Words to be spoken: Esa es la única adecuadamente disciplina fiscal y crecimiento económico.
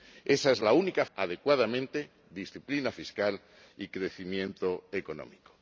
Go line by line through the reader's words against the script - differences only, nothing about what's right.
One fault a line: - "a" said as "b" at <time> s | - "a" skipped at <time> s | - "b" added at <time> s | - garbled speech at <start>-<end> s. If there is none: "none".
none